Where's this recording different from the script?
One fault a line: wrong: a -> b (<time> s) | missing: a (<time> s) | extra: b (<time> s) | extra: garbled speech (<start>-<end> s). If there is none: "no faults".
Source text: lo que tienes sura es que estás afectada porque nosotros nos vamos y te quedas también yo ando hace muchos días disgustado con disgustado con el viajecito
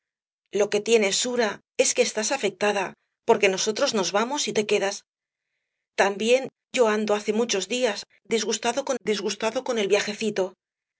no faults